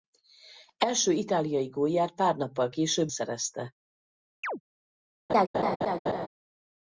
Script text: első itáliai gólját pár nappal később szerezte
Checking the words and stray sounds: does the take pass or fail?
fail